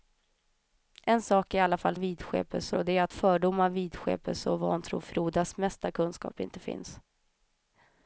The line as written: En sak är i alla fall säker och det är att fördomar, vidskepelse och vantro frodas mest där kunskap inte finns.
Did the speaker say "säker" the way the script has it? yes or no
no